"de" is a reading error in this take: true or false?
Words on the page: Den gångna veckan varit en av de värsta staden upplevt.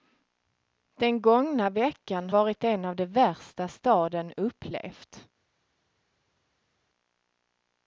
false